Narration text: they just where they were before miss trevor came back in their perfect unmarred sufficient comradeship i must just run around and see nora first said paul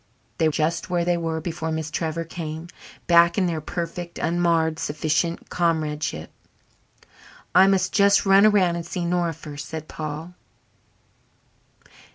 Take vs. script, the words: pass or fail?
pass